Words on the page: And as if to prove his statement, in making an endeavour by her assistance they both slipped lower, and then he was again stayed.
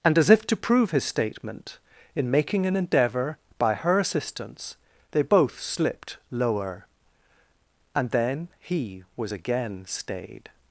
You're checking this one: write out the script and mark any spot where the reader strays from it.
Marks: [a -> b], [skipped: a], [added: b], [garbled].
And as if to prove his statement, in making an endeavour by her assistance they both slipped lower, and then he was again stayed.